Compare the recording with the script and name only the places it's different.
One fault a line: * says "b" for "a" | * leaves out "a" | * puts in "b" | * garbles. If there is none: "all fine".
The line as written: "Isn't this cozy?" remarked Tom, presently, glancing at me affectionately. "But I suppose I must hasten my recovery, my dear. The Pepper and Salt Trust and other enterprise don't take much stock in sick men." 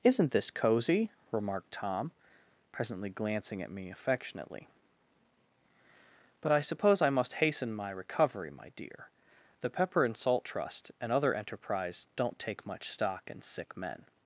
all fine